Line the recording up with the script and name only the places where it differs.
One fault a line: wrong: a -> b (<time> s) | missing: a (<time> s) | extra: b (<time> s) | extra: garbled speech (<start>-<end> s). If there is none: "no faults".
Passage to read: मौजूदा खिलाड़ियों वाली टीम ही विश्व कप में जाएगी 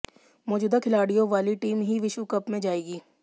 no faults